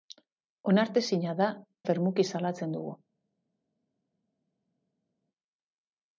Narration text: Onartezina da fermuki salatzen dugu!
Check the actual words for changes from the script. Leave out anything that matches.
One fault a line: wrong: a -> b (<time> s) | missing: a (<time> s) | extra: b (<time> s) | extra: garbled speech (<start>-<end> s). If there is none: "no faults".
no faults